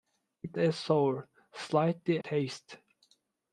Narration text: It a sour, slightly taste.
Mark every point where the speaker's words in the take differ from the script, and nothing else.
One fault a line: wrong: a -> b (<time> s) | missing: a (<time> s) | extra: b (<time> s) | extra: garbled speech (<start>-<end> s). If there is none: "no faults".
no faults